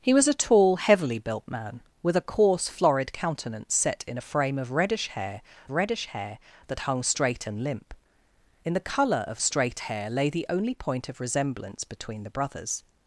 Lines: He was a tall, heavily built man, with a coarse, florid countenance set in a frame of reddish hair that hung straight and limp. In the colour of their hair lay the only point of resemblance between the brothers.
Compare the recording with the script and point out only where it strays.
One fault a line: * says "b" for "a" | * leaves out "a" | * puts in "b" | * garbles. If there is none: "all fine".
* puts in "reddish hair"
* says "straight" for "their"